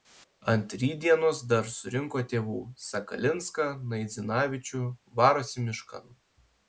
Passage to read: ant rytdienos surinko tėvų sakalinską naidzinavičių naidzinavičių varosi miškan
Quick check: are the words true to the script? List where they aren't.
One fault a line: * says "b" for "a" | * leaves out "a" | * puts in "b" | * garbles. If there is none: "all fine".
* puts in "dar"
* leaves out "naidzinavičių"